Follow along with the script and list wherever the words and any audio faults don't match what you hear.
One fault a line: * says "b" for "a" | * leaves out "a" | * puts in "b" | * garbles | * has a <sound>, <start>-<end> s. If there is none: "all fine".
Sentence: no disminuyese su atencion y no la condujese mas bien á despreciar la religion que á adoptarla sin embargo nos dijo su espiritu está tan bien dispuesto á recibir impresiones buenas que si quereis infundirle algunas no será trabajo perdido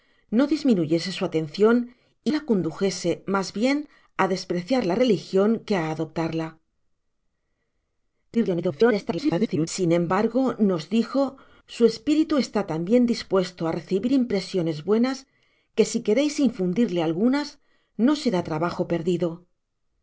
* leaves out "no"
* garbles